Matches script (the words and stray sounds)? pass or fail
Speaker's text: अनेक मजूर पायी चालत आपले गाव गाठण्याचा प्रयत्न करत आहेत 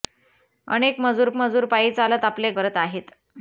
fail